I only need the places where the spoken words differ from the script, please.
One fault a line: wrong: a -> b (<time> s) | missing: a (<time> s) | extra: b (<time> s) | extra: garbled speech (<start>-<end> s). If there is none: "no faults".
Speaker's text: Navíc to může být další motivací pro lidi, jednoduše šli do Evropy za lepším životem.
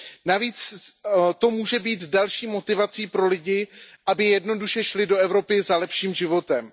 extra: aby (4.1 s)